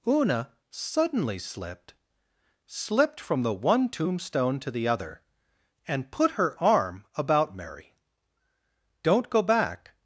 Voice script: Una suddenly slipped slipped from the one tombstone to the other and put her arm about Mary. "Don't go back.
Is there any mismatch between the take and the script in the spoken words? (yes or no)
no